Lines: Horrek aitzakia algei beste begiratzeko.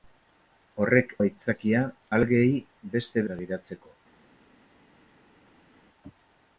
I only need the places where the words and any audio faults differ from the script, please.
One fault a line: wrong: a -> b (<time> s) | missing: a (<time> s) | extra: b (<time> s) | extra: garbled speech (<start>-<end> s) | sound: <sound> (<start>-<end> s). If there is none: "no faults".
no faults